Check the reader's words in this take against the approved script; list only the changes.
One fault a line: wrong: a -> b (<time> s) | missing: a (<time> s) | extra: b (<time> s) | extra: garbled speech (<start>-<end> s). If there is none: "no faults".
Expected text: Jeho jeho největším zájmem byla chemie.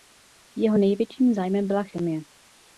missing: jeho (0.8 s)